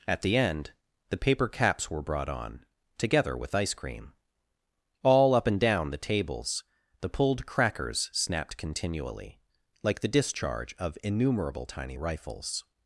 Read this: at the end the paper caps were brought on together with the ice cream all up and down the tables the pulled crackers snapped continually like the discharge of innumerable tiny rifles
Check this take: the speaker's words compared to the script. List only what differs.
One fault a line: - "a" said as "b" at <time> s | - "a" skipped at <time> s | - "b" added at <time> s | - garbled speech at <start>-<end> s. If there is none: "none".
- "the" skipped at 3.5 s